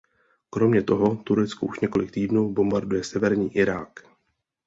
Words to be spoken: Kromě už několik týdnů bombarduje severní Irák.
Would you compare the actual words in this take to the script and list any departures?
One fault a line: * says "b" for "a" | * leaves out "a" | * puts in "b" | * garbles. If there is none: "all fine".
* puts in "toho Turecko"